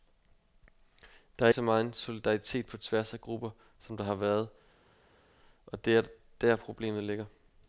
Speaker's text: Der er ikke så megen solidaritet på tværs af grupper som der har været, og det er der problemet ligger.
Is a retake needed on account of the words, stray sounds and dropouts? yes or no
yes